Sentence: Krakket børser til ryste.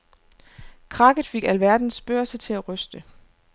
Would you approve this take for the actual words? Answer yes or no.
no